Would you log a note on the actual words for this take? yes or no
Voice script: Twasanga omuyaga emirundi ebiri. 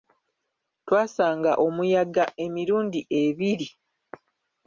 no